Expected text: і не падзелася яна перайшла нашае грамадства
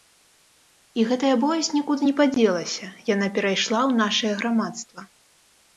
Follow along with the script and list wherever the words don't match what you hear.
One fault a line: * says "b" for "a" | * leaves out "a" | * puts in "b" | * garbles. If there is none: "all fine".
* puts in "гэтая боязь нікуды"
* puts in "ў"